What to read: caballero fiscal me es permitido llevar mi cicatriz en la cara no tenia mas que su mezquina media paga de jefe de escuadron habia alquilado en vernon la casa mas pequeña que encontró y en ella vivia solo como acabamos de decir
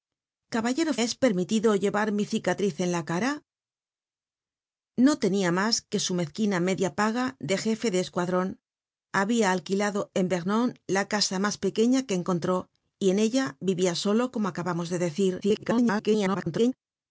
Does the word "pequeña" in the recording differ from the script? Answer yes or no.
no